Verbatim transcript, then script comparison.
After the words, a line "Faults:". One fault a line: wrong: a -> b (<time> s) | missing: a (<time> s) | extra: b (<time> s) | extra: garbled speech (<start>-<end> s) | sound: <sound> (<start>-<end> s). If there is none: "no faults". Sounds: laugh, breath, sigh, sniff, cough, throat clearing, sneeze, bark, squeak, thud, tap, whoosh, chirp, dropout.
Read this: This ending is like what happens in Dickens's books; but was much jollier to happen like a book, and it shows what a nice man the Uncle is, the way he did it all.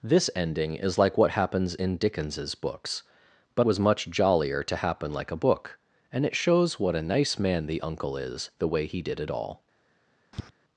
This ending is like what happens in Dickens's books; but was much jollier to happen like a book, and it shows what a nice man the Uncle is, the way he did it all.
Faults:
sound: tap (10.3-10.5 s)